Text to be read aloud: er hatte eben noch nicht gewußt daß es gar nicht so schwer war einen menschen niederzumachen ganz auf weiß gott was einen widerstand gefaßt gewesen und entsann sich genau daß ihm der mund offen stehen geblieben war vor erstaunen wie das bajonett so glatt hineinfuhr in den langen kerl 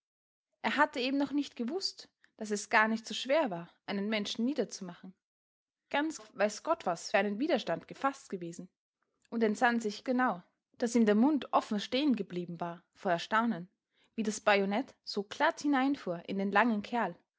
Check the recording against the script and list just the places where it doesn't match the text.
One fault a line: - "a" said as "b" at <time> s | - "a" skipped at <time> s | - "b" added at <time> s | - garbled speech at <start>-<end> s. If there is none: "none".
none